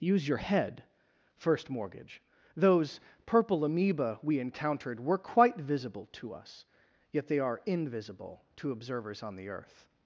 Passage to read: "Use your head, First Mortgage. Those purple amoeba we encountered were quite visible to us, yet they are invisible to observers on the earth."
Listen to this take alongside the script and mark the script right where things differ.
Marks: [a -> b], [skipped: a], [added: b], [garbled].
"Use your head, First Mortgage. Those purple amoeba we encountered were quite visible to us, yet they are invisible to observers on the earth."